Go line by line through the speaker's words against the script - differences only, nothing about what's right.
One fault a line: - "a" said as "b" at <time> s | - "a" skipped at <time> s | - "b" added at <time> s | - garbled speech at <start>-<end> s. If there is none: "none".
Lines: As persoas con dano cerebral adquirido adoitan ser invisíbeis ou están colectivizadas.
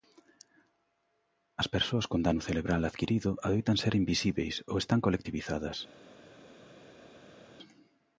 none